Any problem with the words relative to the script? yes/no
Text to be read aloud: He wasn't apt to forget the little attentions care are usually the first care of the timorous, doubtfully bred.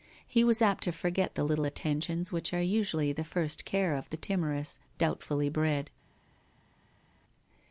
yes